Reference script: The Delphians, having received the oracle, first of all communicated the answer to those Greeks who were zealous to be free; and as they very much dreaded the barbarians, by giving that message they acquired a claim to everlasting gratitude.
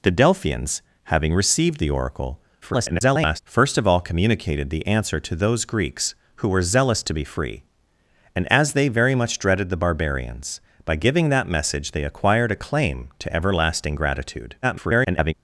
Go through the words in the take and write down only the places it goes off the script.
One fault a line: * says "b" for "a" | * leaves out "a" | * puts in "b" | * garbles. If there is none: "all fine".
* garbles
* garbles